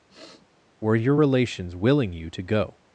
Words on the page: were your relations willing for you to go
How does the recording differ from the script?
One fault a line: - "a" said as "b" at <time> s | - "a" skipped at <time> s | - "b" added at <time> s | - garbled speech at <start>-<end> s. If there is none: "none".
- "for" skipped at 2.1 s